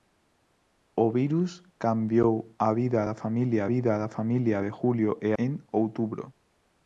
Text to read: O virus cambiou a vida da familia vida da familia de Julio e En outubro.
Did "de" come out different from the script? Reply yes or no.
no